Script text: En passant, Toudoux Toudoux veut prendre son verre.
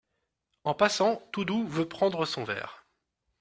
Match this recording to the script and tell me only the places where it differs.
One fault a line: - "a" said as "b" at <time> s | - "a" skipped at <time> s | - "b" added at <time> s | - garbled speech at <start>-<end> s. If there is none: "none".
- "Toudoux" skipped at 1.7 s